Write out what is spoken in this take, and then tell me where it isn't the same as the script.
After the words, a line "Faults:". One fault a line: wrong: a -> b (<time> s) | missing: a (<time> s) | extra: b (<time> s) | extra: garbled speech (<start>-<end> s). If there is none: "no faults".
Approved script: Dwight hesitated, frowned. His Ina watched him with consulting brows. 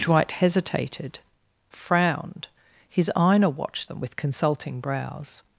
Dwight hesitated, frowned. His Ina watched them with consulting brows.
Faults:
wrong: him -> them (3.9 s)